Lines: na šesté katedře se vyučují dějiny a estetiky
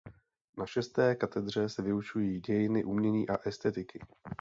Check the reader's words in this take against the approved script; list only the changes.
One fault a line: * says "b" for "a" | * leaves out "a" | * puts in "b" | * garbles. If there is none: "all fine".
* puts in "umění"